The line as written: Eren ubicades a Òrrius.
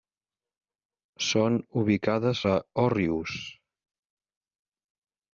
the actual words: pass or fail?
fail